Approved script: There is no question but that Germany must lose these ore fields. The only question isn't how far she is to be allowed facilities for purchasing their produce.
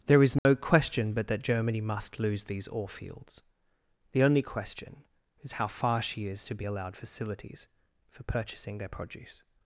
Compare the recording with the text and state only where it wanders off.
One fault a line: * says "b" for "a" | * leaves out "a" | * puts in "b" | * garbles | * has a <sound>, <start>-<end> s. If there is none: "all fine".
* has a dropout, 0.4-0.5 s
* says "is" for "isn't"